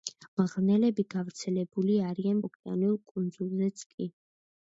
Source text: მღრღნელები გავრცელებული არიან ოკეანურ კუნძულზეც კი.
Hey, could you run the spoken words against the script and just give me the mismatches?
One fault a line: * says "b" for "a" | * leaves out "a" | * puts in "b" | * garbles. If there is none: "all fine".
all fine